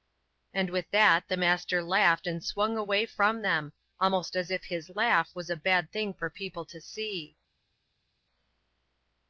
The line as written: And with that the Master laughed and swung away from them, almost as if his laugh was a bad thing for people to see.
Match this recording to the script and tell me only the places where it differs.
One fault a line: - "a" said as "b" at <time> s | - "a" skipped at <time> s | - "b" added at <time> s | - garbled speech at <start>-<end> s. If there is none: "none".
none